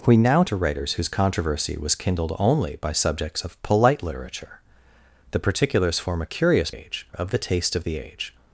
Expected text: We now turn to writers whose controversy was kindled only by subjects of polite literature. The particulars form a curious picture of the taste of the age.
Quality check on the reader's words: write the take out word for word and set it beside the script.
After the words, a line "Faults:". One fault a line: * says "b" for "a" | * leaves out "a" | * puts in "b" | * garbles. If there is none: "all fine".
We now to writers whose controversy was kindled only by subjects of polite literature. The particulars form a curious age of the taste of the age.
Faults:
* leaves out "turn"
* says "age" for "picture"